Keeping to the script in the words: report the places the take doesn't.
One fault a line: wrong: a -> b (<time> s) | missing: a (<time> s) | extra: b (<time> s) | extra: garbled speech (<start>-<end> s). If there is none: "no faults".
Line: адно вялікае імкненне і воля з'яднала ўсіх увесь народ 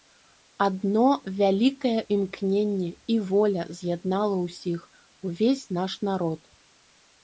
extra: наш (5.8 s)